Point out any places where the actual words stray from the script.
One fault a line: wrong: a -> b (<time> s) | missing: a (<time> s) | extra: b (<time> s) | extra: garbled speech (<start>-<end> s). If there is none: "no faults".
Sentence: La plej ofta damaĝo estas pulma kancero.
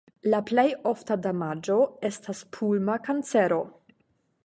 no faults